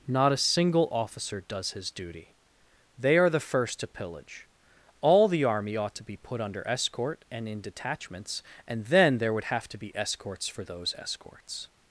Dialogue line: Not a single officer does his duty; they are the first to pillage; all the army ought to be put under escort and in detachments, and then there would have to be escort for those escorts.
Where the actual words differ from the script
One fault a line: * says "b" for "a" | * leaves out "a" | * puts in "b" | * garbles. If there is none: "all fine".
* says "escorts" for "escort"